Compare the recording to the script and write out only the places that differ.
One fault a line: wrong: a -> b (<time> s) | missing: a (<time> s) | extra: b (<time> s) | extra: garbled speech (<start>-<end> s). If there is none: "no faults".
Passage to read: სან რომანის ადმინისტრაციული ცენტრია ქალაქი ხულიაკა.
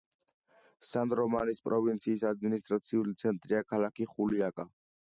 extra: პროვინციის (1.7 s)